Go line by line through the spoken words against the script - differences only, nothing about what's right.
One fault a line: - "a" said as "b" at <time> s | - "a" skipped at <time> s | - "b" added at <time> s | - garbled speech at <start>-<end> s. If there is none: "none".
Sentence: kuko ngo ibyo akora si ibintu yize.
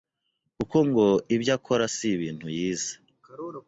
none